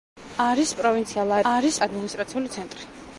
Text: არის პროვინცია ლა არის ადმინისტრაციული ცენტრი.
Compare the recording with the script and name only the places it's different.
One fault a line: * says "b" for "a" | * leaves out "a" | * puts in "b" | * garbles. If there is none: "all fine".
all fine